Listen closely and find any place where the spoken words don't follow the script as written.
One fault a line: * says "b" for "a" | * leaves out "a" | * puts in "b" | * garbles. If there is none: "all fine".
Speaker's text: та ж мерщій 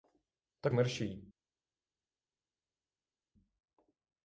all fine